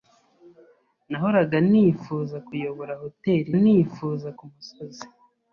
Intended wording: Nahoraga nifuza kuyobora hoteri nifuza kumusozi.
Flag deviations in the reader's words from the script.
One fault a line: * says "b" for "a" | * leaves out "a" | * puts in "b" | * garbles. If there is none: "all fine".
all fine